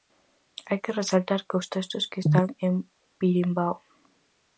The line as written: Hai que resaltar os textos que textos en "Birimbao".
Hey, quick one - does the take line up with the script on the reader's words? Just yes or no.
no